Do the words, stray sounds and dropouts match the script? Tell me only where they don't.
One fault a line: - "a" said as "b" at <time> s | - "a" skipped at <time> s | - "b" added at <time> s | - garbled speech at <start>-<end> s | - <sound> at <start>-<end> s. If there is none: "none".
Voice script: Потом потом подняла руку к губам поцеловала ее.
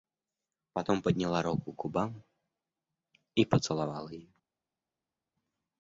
- "потом" skipped at 1.0 s
- "и" added at 3.4 s